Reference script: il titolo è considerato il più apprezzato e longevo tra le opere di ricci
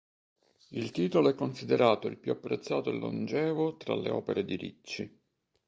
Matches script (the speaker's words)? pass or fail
pass